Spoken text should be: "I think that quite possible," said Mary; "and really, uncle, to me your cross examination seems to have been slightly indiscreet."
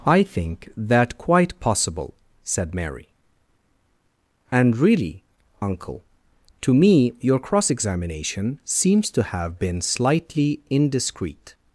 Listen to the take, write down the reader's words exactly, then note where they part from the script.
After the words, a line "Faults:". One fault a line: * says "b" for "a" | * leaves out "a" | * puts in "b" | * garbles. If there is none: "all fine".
"I think that quite possible," said Mary; "and really, uncle, to me your cross examination seems to have been slightly indiscreet."
Faults:
all fine